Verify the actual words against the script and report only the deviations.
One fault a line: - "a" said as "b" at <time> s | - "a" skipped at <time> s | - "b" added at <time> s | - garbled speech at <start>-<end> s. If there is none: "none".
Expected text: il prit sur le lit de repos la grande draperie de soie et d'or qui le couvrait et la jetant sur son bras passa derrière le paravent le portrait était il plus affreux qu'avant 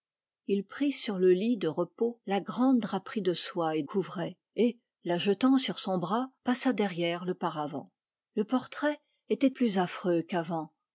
- "d'or qui le" skipped at 3.8 s
- "il" skipped at 9.5 s